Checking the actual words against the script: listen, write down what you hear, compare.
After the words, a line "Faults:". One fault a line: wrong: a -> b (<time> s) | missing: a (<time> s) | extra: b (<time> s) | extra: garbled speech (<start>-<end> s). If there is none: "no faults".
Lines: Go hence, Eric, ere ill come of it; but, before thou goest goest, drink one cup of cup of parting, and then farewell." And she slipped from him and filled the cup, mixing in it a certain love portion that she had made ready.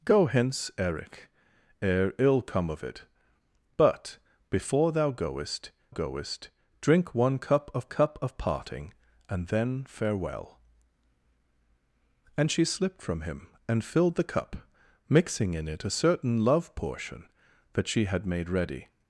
Go hence, Eric, ere ill come of it; but, before thou goest goest, drink one cup of cup of parting, and then farewell." And she slipped from him and filled the cup, mixing in it a certain love portion that she had made ready.
Faults:
no faults